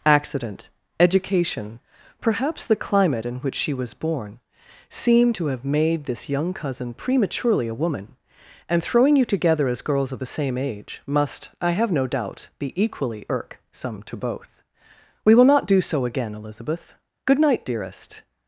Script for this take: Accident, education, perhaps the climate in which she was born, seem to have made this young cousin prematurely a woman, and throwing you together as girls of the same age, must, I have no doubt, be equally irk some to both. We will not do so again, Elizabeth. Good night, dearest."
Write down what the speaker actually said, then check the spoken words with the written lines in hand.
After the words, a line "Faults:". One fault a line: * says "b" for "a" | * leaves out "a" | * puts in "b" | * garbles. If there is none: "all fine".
Accident, education, perhaps the climate in which she was born, seem to have made this young cousin prematurely a woman, and throwing you together as girls of the same age, must, I have no doubt, be equally irk some to both. We will not do so again, Elizabeth. Good night, dearest."
Faults:
all fine